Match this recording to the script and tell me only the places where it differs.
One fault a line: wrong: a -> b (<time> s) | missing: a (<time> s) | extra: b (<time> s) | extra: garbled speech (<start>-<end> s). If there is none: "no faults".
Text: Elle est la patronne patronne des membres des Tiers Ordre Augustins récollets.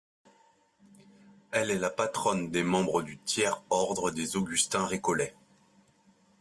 missing: patronne (2.5 s)
wrong: des -> du (3.0 s)
extra: des (4.1 s)